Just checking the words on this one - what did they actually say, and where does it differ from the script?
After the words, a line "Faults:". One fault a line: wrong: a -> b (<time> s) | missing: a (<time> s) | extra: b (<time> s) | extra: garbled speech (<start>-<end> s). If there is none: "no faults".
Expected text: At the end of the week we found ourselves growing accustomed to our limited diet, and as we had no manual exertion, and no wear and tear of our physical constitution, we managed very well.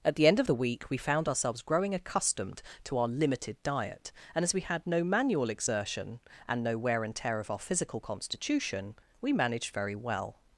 At the end of the week we found ourselves growing accustomed to our limited diet, and as we had no manual exertion, and no wear and tear of our physical constitution, we managed very well.
Faults:
no faults